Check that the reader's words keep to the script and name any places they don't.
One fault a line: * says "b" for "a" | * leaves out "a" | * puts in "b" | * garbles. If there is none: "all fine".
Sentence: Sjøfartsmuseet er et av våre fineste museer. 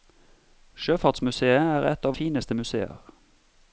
* leaves out "våre"